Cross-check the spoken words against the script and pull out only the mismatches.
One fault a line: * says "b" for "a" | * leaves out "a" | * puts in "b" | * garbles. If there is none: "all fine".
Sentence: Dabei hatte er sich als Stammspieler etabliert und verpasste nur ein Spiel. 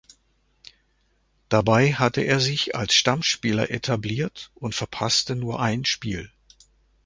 all fine